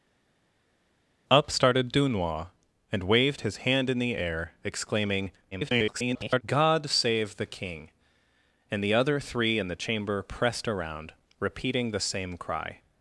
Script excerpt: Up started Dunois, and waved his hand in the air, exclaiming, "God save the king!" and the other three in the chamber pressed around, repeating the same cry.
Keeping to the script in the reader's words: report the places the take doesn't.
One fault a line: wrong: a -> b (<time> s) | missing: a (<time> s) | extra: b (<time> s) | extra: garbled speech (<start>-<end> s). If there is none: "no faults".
extra: garbled speech (5.5-6.4 s)